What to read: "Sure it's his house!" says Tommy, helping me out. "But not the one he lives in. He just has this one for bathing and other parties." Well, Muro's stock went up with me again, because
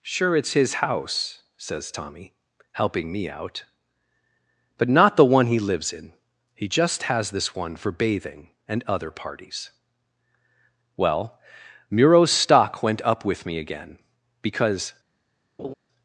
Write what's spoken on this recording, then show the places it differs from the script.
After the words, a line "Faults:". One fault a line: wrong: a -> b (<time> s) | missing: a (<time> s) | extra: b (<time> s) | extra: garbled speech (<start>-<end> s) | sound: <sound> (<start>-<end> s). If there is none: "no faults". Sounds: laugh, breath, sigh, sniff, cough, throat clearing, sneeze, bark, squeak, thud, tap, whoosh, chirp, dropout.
"Sure it's his house!" says Tommy, helping me out. "But not the one he lives in. He just has this one for bathing and other parties." Well, Muro's stock went up with me again, because
Faults:
sound: laugh (15.6-15.7 s)